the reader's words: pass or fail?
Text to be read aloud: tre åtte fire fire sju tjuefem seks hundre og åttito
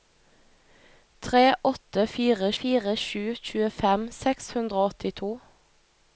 pass